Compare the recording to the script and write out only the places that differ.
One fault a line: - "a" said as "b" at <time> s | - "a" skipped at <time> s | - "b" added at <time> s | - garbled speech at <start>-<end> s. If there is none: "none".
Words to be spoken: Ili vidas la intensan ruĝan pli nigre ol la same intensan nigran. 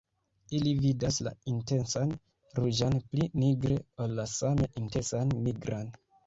none